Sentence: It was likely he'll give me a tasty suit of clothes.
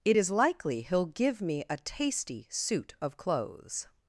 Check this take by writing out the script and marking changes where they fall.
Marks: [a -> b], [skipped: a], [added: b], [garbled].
It [was -> is] likely he'll give me a tasty suit of clothes.